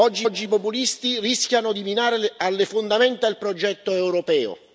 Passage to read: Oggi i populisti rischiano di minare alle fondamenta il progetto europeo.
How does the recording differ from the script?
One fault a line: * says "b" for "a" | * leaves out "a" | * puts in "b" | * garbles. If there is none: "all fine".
* puts in "oggi"